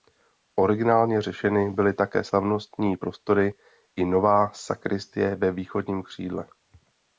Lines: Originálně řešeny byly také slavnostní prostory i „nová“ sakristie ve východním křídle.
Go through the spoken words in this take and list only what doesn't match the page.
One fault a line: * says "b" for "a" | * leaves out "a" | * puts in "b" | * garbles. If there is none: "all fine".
all fine